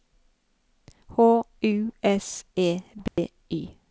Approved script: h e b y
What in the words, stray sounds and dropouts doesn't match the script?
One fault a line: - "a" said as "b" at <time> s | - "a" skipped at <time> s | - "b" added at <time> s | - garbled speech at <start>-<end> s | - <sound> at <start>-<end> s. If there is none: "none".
- "u s" added at 1.6 s
- dropout at 3.1-3.2 s